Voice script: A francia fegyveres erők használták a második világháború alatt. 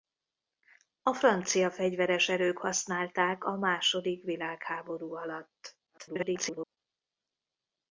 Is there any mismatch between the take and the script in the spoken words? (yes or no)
yes